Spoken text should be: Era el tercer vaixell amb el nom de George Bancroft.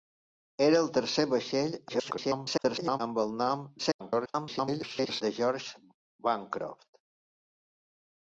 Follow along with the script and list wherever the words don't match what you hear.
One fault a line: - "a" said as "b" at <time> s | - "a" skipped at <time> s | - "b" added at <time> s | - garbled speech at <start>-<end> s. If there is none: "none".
- garbled speech at 1.9-3.0 s
- garbled speech at 3.8-5.2 s